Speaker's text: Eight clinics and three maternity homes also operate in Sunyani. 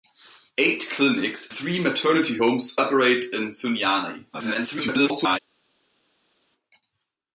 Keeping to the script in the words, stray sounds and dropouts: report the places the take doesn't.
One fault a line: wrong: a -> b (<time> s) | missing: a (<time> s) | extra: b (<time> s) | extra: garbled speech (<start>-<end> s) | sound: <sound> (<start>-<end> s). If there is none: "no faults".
missing: and (1.5 s)
missing: also (2.8 s)
extra: garbled speech (4.3-5.4 s)